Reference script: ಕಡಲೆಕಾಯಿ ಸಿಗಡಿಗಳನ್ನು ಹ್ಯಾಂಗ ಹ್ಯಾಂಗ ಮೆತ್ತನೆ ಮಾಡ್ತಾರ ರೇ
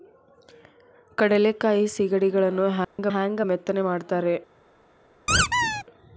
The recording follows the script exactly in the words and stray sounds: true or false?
false